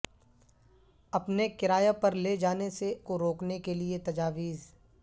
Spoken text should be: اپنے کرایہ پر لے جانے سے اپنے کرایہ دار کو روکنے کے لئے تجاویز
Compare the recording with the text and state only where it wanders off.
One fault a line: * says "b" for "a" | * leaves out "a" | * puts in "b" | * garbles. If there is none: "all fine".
* leaves out "اپنے کرایہ دار"